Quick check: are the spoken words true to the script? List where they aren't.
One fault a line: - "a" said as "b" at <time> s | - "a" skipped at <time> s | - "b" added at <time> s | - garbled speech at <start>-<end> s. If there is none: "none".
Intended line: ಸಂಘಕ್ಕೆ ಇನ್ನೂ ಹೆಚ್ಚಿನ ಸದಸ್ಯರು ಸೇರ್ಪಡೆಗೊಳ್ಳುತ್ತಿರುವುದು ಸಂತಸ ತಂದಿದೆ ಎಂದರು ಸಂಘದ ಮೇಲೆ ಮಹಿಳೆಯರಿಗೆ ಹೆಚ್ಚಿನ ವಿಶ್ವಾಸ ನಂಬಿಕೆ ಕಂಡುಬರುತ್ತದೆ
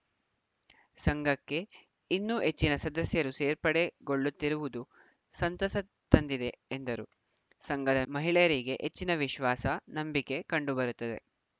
- "ಮೇಲೆ" skipped at 8.0 s